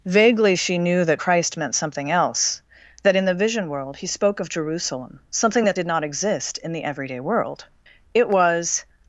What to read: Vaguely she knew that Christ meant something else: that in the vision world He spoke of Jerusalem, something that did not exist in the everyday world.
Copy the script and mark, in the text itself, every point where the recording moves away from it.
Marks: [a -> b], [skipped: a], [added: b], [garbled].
Vaguely she knew that Christ meant something else: that in the vision world He spoke of Jerusalem, something that did not exist in the everyday world. [added: It was]